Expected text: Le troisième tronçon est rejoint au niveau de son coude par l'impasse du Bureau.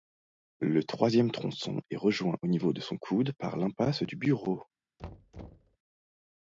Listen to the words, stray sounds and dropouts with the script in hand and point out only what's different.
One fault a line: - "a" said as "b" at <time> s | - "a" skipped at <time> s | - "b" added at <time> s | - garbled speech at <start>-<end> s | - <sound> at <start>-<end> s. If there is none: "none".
- thud at 5.0-5.8 s